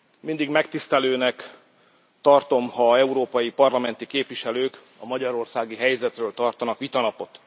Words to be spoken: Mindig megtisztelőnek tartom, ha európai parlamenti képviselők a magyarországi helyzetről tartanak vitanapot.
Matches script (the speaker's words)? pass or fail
pass